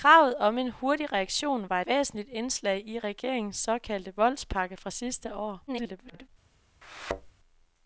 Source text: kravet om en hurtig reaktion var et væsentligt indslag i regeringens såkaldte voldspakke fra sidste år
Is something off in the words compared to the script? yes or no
yes